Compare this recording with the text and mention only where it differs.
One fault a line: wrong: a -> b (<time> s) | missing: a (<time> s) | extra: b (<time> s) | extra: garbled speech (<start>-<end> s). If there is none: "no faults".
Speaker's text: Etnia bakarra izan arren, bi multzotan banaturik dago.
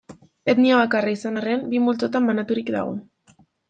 no faults